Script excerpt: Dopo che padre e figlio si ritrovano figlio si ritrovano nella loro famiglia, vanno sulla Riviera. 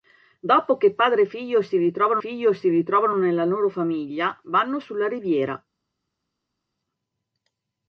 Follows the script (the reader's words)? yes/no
yes